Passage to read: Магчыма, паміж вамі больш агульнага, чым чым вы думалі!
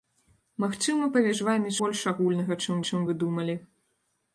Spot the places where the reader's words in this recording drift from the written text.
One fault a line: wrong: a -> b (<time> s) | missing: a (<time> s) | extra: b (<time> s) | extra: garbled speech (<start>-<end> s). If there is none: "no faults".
no faults